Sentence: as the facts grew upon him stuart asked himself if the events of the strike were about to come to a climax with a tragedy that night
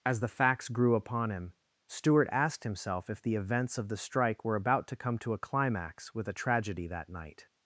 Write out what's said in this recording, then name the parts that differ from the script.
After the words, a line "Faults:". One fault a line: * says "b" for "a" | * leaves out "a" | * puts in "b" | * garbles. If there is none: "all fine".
as the facts grew upon him stuart asked himself if the events of the strike were about to come to a climax with a tragedy that night
Faults:
all fine